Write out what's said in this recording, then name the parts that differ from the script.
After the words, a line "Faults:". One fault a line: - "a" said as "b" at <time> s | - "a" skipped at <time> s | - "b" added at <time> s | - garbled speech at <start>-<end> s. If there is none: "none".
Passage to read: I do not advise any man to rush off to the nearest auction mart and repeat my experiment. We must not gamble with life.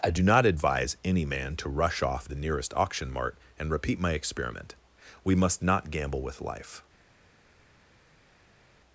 I do not advise any man to rush off the nearest auction mart and repeat my experiment. We must not gamble with life.
Faults:
- "to" skipped at 2.3 s